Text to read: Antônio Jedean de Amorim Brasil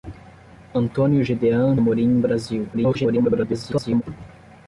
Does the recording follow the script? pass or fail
fail